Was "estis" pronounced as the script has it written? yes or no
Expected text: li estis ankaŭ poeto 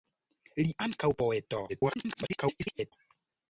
no